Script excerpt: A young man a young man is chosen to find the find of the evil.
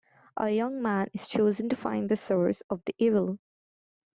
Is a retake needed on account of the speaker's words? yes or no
yes